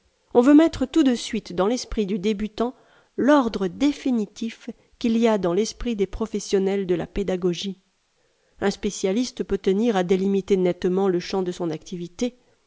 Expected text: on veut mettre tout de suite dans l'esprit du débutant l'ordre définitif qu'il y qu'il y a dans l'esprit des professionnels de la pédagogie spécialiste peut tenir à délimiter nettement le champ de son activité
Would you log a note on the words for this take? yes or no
yes